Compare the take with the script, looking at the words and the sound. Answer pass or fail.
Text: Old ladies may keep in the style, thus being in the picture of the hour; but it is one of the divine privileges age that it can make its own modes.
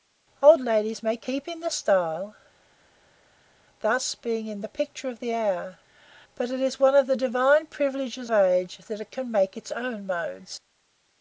pass